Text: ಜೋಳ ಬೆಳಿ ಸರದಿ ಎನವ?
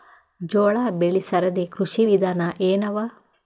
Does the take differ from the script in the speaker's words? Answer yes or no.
yes